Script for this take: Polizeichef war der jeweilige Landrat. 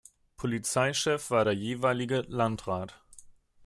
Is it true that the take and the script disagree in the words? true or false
false